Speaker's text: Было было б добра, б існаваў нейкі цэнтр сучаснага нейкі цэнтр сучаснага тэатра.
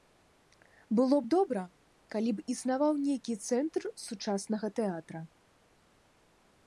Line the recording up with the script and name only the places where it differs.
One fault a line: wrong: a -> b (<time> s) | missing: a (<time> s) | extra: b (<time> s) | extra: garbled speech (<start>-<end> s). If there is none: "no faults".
missing: было (1.2 s)
extra: калі (2.1 s)
missing: нейкі цэнтр сучаснага (4.7 s)